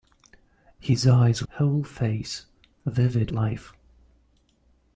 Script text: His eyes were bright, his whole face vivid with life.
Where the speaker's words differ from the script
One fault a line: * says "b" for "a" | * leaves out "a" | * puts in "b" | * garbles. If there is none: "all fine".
* leaves out "were bright his"
* leaves out "with"